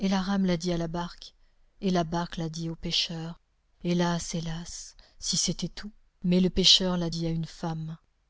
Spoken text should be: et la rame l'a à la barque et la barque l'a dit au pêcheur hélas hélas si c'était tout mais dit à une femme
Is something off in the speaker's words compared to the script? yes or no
yes